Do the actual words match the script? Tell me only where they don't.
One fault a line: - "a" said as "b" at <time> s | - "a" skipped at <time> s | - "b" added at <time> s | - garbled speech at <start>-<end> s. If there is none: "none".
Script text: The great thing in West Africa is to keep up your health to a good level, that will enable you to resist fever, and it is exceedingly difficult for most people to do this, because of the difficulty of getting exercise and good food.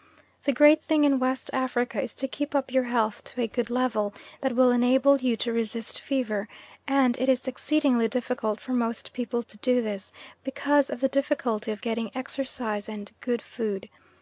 none